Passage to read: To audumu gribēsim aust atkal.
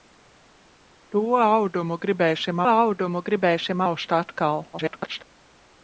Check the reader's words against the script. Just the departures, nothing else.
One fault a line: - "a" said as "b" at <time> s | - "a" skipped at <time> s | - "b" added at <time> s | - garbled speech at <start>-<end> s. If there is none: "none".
- "audumu gribēsim" added at 2.7 s
- garbled speech at 4.7-5.2 s